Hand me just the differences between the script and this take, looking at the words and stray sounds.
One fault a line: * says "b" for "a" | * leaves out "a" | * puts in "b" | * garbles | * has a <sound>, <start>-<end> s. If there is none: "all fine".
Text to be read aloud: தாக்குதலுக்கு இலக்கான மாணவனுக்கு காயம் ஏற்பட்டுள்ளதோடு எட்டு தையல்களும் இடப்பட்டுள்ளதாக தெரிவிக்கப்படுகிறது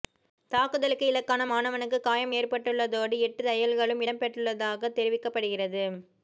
all fine